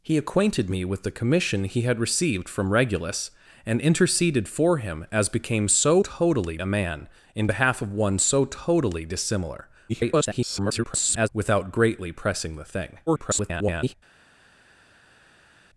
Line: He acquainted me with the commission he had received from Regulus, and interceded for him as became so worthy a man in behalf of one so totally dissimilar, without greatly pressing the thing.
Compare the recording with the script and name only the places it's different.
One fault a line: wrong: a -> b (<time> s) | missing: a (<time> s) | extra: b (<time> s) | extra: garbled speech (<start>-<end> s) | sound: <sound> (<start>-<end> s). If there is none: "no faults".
wrong: worthy -> totally (6.0 s)
extra: garbled speech (9.9-11.3 s)
extra: garbled speech (13.1-13.9 s)